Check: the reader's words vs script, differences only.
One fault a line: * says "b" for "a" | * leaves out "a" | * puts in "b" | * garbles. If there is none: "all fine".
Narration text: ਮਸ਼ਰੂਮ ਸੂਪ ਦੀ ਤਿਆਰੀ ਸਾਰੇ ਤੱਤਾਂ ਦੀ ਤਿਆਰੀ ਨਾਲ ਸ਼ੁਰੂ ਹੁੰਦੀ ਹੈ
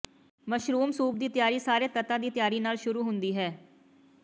all fine